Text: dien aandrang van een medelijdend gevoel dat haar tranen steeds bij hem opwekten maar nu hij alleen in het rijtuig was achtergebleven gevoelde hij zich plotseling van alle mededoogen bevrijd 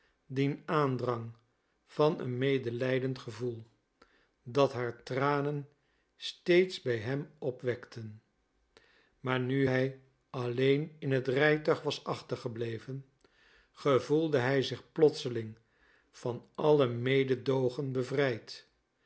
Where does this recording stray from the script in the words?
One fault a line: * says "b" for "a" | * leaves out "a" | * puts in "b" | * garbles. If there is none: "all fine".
all fine